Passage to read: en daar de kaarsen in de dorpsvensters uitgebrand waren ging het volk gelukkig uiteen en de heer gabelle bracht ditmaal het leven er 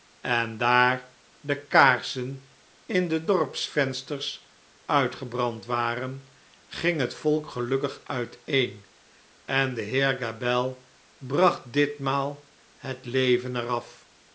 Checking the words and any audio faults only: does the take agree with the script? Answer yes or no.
yes